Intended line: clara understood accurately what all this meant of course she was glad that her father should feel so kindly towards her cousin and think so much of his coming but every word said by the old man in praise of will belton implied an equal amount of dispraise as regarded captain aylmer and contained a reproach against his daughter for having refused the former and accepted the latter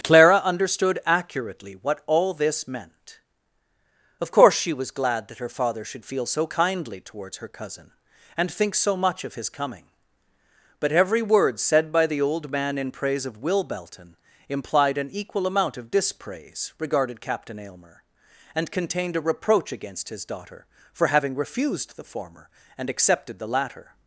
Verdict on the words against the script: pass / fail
fail